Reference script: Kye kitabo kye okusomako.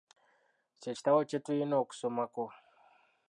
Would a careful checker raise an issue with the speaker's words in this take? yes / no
yes